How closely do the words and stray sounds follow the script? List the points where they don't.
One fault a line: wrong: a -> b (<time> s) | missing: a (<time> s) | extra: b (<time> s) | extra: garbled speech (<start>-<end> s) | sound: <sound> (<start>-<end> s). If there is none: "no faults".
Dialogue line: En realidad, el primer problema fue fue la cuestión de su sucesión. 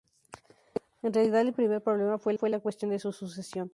no faults